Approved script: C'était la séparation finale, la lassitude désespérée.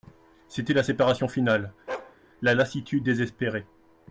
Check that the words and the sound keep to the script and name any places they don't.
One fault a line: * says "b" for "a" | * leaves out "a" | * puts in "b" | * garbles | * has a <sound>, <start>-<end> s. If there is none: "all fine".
* has a bark, 1.9-2.2 s